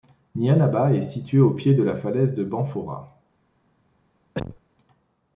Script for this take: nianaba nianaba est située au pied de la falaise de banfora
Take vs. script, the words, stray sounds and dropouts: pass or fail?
fail